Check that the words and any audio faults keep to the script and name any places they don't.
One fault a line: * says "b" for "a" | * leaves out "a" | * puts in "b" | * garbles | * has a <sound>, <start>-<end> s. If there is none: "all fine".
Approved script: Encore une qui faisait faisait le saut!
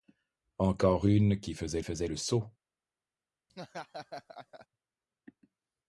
* has a laugh, 3.5-4.7 s